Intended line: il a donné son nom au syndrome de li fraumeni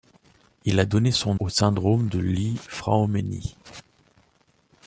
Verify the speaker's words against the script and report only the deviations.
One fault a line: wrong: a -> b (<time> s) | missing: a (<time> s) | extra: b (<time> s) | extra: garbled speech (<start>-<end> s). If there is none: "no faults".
missing: nom (1.4 s)